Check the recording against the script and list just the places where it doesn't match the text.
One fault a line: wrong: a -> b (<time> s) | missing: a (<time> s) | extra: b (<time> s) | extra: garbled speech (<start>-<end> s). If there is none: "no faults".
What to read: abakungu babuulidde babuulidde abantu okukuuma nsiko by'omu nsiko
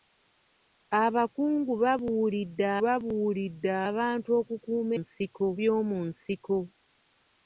no faults